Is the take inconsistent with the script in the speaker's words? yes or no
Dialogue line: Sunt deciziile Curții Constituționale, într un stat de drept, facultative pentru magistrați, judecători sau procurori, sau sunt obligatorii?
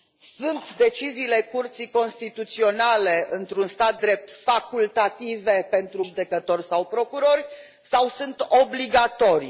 yes